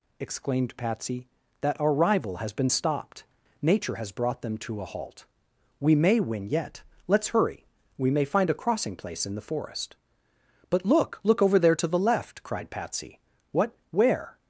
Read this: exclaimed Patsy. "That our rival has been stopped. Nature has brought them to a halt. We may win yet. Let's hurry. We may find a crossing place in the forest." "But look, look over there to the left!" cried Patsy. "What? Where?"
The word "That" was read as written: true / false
true